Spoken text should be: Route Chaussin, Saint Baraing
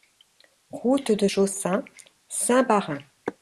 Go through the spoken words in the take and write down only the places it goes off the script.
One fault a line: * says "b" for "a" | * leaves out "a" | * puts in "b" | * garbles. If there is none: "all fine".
* puts in "de"